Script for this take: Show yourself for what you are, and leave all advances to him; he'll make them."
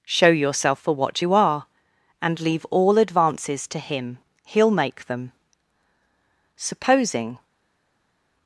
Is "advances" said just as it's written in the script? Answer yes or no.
yes